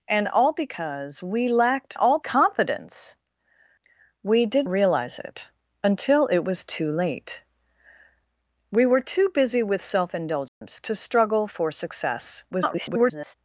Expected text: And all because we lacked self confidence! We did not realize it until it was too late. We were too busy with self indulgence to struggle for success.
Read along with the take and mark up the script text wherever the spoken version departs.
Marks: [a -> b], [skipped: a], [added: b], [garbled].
And all because we lacked [self -> all] confidence! We did [skipped: not] realize it until it was too late. We were too busy with self indulgence to struggle for success. [garbled]